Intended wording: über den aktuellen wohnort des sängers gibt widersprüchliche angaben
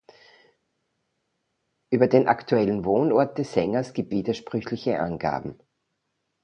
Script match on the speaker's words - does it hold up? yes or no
yes